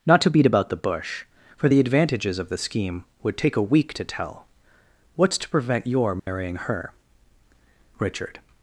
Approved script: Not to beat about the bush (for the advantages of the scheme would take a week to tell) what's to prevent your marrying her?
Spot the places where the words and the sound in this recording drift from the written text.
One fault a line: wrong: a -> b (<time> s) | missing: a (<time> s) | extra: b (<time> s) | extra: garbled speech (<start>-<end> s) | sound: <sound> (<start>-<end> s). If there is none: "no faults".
sound: dropout (6.2-6.3 s)
extra: Richard (8.0 s)